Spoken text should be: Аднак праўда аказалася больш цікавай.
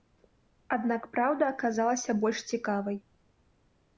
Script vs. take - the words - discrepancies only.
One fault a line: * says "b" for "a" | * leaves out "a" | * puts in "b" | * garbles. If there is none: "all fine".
all fine